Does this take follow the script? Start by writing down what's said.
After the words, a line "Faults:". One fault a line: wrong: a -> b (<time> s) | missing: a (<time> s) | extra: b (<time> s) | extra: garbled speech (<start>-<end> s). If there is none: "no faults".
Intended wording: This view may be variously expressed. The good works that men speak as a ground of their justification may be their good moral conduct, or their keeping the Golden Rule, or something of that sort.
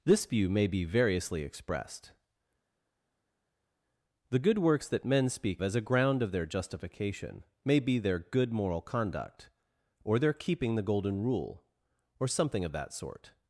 This view may be variously expressed. The good works that men speak as a ground of their justification may be their good moral conduct, or their keeping the Golden Rule, or something of that sort.
Faults:
no faults